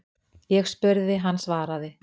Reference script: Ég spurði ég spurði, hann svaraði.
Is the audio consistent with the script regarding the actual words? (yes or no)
no